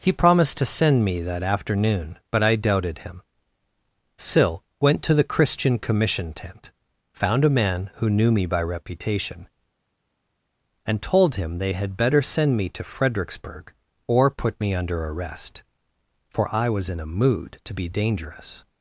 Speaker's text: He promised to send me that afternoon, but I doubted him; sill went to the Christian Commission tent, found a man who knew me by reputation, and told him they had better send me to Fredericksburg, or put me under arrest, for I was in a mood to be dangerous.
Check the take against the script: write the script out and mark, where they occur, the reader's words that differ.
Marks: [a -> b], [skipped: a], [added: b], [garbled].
He promised to send me that afternoon, but I doubted him; sill went to the Christian Commission tent, found a man who knew me by reputation, and told him they had better send me to Fredericksburg, or put me under arrest, for I was in a mood to be dangerous.